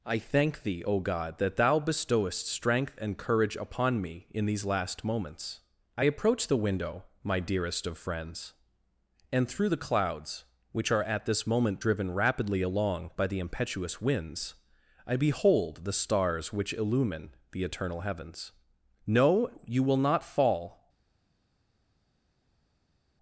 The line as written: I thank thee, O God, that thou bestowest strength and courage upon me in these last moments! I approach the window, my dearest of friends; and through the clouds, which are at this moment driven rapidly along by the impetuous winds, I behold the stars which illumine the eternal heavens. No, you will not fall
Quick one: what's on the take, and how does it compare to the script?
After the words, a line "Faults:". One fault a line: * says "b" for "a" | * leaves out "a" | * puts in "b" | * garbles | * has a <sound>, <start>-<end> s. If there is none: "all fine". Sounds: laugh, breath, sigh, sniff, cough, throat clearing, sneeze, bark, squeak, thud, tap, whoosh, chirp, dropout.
I thank thee, O God, that thou bestowest strength and courage upon me in these last moments! I approach the window, my dearest of friends; and through the clouds, which are at this moment driven rapidly along by the impetuous winds, I behold the stars which illumine the eternal heavens. No, you will not fall
Faults:
all fine